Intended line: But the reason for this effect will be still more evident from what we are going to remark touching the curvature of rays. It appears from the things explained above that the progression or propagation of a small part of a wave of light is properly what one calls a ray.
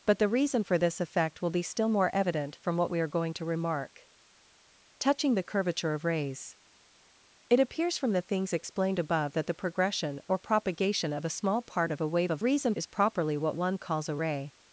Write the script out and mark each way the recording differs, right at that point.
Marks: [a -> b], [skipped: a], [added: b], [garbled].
But the reason for this effect will be still more evident from what we are going to remark touching the curvature of rays. It appears from the things explained above that the progression or propagation of a small part of a wave of [light -> reason] is properly what one calls a ray.